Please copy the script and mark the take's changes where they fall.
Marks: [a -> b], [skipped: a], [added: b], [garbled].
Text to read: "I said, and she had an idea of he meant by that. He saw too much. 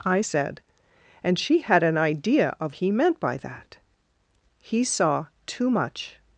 "I said, and she had an idea of he meant by that. He saw too much.